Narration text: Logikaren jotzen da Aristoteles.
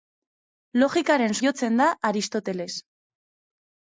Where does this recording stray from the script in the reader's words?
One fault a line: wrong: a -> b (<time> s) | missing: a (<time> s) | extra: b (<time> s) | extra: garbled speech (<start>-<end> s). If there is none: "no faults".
no faults